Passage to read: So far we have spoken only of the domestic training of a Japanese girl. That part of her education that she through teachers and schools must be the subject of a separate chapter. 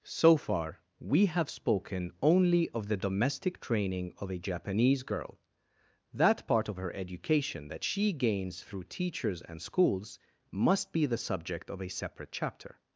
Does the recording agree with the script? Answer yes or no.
no